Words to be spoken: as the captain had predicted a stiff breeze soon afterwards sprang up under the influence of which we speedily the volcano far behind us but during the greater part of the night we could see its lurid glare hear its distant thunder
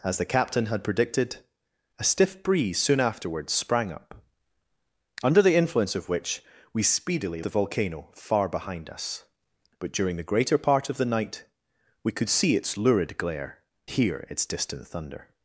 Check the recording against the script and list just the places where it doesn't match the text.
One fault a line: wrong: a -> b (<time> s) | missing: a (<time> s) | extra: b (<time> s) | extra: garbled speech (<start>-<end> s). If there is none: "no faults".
no faults